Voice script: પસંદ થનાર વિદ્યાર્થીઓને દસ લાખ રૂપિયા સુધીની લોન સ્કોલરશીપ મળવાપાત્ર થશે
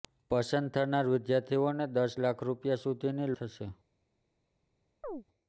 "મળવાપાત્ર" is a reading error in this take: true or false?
true